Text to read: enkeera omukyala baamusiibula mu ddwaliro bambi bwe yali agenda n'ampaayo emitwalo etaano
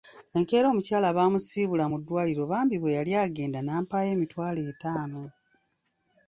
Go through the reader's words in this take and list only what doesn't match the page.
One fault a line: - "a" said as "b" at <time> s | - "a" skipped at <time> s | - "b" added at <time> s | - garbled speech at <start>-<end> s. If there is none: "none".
none